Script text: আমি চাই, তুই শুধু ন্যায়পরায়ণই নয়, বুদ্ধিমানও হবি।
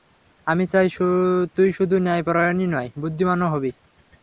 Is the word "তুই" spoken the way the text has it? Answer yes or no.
yes